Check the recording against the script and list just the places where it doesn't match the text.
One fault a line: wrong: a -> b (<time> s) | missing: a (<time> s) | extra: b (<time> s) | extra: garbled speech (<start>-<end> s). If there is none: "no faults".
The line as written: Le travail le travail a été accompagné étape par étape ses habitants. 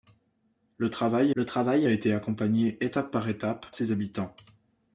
no faults